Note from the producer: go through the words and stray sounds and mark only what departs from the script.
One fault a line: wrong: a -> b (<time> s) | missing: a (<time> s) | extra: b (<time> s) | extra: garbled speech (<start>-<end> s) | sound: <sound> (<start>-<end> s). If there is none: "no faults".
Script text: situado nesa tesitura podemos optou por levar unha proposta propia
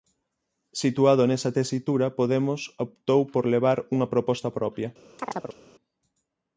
sound: chirp (5.2-5.6 s)